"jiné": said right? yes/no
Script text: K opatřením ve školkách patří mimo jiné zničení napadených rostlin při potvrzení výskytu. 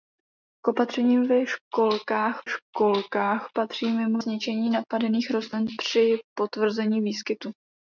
no